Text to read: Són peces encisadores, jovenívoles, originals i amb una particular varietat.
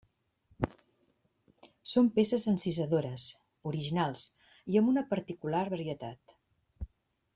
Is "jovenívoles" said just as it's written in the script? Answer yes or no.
no